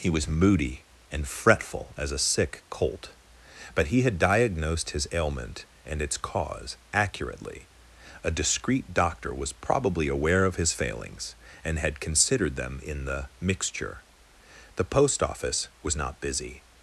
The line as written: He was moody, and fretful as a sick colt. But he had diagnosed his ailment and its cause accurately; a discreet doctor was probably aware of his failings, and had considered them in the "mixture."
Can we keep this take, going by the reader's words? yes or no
no